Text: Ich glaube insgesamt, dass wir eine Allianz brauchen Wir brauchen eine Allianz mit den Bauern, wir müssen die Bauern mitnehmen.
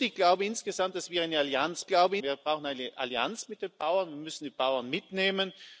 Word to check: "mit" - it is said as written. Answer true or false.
true